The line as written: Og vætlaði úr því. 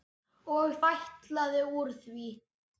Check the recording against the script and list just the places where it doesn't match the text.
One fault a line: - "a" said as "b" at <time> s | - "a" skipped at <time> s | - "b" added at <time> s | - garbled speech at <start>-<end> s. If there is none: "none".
none